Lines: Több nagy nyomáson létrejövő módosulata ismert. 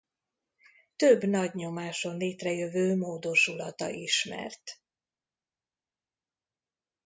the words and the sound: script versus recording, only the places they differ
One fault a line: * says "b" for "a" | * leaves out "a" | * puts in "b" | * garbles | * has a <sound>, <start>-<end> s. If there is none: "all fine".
all fine